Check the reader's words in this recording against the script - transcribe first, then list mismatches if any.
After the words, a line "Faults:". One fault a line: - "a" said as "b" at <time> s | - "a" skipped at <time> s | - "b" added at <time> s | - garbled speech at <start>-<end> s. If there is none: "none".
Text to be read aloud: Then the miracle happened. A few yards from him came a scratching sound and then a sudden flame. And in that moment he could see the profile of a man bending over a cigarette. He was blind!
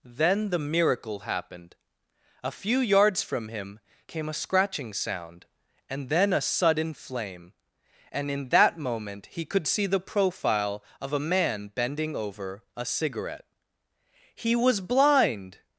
Then the miracle happened. A few yards from him came a scratching sound and then a sudden flame. And in that moment he could see the profile of a man bending over a cigarette. He was blind!
Faults:
none